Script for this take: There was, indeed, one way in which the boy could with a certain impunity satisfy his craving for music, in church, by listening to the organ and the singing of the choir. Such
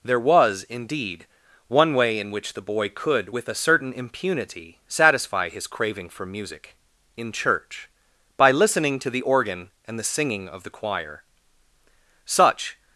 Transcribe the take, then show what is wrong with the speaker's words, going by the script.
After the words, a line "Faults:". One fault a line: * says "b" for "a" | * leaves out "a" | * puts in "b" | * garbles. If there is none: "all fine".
There was, indeed, one way in which the boy could with a certain impunity satisfy his craving for music, in church, by listening to the organ and the singing of the choir. Such
Faults:
all fine